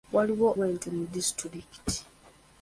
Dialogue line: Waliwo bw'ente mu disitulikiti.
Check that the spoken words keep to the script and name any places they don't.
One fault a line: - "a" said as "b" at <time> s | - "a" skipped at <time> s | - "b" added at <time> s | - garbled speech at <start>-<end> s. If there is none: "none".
none